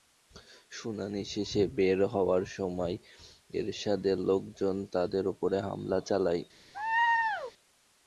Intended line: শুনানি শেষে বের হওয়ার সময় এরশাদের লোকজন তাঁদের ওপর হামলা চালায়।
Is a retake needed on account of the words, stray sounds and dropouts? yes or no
yes